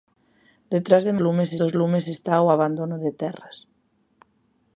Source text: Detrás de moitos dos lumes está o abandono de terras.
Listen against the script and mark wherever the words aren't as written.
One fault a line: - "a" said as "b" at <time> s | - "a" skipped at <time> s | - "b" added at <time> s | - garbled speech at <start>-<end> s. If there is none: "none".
- "moitos" said as "lumes" at 1.2 s